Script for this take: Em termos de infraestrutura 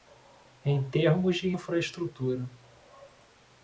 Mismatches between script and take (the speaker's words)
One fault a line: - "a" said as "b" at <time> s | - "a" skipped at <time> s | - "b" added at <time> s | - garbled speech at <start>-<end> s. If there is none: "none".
none